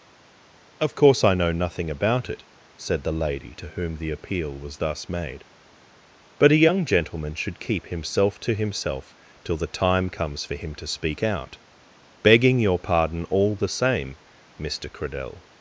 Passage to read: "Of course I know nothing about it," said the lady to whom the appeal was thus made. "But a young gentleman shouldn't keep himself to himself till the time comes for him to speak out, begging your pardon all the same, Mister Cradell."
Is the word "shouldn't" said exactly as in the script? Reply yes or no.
no